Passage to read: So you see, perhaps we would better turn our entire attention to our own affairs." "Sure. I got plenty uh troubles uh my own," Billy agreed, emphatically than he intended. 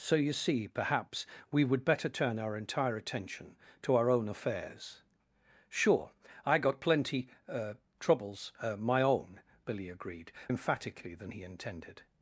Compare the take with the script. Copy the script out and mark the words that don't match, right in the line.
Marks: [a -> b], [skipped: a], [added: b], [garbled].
So you see, perhaps we would better turn our entire attention to our own affairs." "Sure. I got plenty uh troubles uh my own," Billy agreed, emphatically than he intended.